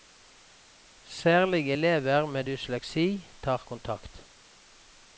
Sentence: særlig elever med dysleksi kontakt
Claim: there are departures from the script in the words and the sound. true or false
true